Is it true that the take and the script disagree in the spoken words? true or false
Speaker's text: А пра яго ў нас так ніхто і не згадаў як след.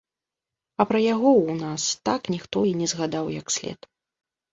false